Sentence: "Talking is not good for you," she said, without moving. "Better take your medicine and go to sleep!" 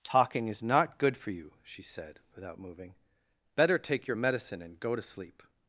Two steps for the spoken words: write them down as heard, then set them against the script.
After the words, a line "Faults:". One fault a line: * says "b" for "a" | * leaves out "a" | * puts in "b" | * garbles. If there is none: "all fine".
"Talking is not good for you," she said, without moving. "Better take your medicine and go to sleep!"
Faults:
all fine